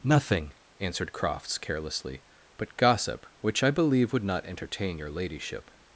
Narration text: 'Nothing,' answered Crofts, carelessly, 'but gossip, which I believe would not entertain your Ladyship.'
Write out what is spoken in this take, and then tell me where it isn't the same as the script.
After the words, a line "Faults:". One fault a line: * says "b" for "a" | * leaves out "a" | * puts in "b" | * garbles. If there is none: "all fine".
'Nothing,' answered Crofts, carelessly, 'but gossip, which I believe would not entertain your Ladyship.'
Faults:
all fine